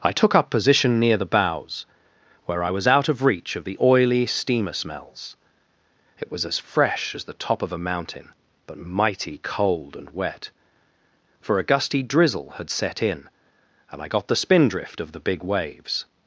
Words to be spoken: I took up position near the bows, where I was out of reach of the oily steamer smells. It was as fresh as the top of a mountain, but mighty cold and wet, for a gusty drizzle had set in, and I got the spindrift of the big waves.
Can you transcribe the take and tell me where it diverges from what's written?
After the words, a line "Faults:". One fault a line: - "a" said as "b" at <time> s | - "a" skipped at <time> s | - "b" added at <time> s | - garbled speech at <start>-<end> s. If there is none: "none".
I took up position near the bows, where I was out of reach of the oily steamer smells. It was as fresh as the top of a mountain, but mighty cold and wet, for a gusty drizzle had set in, and I got the spindrift of the big waves.
Faults:
none